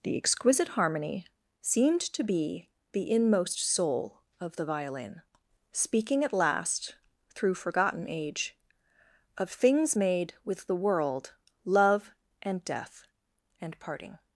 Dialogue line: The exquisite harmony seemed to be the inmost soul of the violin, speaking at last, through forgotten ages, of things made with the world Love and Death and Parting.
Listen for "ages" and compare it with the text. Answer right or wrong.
wrong